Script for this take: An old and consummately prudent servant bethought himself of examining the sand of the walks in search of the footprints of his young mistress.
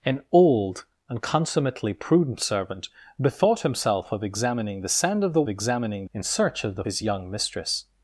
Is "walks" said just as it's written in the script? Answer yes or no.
no